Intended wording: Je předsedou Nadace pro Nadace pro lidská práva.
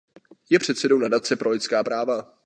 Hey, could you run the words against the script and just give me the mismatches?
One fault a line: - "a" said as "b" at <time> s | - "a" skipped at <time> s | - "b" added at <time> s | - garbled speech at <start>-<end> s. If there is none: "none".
- "Nadace pro" skipped at 1.5 s